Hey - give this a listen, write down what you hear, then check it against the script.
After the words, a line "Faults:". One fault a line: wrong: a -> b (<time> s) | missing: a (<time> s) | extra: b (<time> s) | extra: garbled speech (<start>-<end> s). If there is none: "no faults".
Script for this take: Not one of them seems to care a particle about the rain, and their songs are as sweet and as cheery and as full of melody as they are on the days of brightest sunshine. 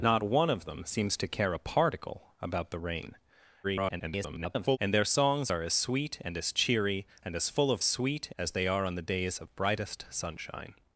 Not one of them seems to care a particle about the rain, [garbled] and their songs are as sweet and as cheery and as full of sweet as they are on the days of brightest sunshine.
Faults:
extra: garbled speech (3.6-4.8 s)
wrong: melody -> sweet (7.8 s)